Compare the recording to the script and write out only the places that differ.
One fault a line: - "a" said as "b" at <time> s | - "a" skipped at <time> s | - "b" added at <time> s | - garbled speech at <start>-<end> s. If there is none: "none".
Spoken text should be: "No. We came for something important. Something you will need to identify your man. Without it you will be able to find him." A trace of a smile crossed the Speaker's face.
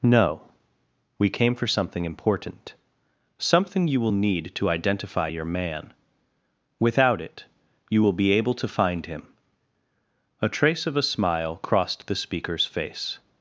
none